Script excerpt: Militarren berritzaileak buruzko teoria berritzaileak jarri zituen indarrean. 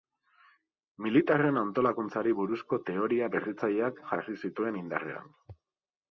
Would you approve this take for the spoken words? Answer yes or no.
no